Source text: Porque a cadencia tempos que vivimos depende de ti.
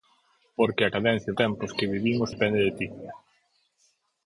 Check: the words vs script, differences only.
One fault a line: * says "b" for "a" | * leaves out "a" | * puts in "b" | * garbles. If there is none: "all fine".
all fine